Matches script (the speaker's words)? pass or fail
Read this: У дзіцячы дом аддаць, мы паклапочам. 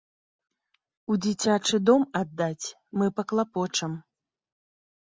pass